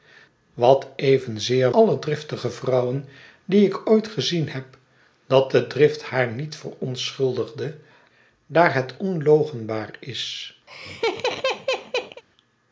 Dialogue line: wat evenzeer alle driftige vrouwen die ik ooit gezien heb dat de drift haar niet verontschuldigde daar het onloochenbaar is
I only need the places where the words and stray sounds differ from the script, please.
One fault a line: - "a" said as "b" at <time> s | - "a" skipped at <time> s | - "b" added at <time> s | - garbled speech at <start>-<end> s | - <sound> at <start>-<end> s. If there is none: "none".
- laugh at 10.7-12.2 s